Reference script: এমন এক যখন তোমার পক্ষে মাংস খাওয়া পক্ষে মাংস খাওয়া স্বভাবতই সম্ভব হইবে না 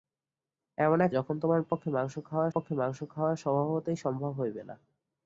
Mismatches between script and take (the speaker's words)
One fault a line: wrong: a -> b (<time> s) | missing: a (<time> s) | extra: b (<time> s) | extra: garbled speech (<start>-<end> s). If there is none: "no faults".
no faults